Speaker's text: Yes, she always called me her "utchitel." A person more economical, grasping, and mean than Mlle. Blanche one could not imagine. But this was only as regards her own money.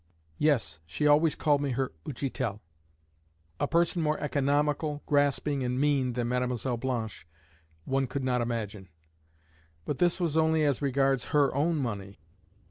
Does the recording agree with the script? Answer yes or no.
yes